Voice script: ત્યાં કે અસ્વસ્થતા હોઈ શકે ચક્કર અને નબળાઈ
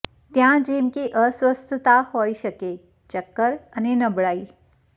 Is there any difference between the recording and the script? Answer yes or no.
yes